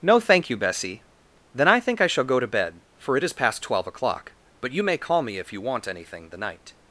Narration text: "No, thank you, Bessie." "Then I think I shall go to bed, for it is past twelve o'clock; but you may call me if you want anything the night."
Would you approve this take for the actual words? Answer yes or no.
yes